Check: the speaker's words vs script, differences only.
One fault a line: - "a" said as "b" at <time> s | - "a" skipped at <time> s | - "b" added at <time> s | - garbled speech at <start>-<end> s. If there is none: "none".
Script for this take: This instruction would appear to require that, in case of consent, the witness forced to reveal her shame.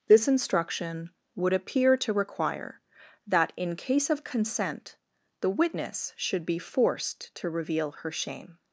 - "should be" added at 6.2 s